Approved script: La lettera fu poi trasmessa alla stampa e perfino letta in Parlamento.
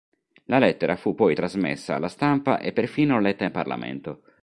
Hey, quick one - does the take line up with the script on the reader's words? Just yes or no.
yes